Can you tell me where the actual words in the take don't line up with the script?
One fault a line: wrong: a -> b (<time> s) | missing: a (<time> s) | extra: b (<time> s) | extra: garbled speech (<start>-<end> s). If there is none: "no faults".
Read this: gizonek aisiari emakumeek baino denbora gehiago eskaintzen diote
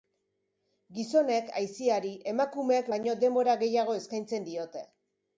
no faults